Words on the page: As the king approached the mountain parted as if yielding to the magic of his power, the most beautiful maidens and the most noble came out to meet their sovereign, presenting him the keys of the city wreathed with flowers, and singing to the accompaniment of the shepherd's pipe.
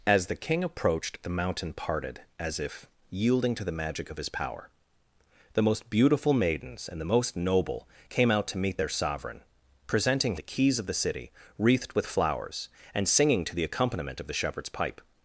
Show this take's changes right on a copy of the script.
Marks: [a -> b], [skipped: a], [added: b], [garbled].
As the king approached the mountain parted as if yielding to the magic of his power, the most beautiful maidens and the most noble came out to meet their sovereign, presenting [skipped: him] the keys of the city wreathed with flowers, and singing to the accompaniment of the shepherd's pipe.